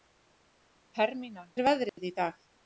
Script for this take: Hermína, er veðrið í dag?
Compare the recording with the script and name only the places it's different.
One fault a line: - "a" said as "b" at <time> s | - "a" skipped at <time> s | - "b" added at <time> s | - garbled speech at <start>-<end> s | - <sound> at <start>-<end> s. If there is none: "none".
- dropout at 1.9-2.0 s